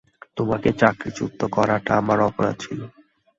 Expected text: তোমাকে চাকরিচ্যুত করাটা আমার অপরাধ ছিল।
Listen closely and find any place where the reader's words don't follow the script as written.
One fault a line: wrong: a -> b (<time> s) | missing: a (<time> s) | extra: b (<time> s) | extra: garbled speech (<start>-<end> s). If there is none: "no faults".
no faults